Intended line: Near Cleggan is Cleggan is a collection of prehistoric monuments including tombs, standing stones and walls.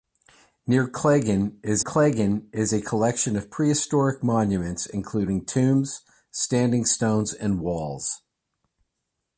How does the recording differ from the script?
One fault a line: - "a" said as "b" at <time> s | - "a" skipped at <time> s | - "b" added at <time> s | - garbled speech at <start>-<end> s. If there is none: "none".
none